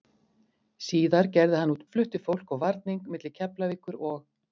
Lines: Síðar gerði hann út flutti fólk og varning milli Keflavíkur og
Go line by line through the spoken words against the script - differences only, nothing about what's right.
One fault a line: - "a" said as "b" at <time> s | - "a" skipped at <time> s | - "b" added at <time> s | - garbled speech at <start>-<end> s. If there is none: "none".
none